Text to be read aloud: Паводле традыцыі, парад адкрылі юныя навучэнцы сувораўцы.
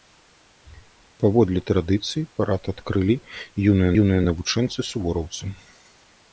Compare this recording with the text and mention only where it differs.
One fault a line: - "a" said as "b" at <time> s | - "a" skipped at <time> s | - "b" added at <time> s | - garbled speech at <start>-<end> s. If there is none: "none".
- "юныя" added at 4.0 s